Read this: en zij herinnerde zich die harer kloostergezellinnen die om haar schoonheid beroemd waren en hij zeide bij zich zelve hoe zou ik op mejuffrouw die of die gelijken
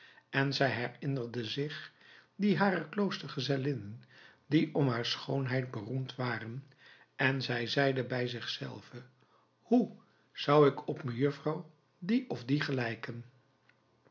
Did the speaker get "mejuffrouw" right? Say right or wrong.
right